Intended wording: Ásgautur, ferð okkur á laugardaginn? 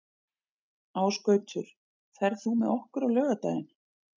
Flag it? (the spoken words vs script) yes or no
yes